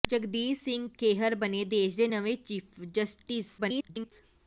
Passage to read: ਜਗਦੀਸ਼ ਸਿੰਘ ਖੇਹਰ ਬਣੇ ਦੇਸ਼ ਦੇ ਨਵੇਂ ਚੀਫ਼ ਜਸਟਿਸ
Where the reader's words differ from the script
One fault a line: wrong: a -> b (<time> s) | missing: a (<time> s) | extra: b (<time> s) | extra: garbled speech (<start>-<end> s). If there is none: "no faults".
extra: garbled speech (3.6-4.1 s)